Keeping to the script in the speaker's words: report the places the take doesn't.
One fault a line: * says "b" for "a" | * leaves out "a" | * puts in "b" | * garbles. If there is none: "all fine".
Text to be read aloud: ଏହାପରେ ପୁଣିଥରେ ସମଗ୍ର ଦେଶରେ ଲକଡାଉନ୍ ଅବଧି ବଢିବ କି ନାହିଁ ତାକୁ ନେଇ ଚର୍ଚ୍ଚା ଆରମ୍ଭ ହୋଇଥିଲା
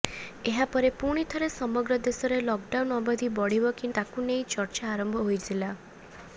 * leaves out "ନାହିଁ"